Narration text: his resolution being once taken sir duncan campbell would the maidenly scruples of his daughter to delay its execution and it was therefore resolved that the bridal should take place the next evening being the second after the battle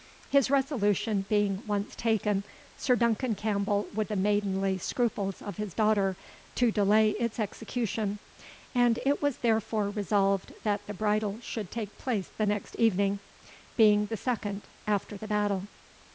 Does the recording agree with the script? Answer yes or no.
yes